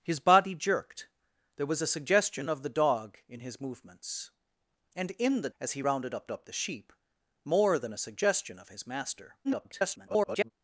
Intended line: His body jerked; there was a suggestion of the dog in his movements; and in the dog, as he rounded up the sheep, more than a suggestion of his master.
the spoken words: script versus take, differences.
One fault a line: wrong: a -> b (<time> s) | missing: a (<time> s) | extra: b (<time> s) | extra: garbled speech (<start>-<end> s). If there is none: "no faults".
missing: dog (5.5 s)
extra: up (6.3 s)
extra: garbled speech (9.4-10.5 s)